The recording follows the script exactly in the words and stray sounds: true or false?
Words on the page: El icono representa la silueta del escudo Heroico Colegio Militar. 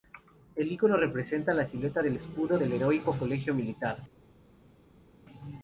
false